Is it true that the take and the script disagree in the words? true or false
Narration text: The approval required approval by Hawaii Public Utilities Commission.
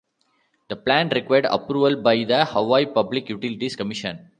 true